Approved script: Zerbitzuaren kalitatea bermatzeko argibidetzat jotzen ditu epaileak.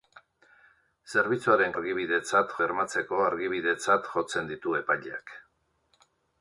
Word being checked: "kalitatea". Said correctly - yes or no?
no